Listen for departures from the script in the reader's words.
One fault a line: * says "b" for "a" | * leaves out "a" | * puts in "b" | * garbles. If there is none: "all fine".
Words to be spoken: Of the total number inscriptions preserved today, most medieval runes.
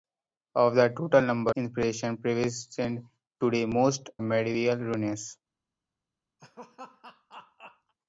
all fine